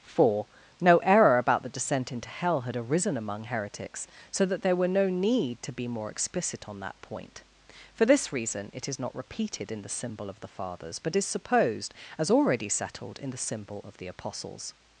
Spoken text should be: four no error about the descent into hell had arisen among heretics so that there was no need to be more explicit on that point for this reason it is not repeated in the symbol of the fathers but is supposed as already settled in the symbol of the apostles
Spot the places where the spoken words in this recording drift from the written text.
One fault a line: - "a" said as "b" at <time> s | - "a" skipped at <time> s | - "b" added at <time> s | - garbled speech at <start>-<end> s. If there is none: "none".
- "was" said as "were" at 4.8 s